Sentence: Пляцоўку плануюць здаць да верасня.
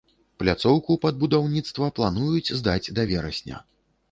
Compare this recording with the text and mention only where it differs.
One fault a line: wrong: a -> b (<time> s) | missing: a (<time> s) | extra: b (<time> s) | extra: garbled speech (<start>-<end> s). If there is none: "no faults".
extra: пад будаўніцтва (1.0 s)